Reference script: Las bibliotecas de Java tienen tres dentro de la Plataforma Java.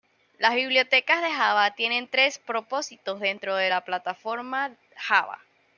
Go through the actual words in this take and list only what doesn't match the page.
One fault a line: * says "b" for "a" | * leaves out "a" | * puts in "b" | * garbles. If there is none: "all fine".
* puts in "propósitos"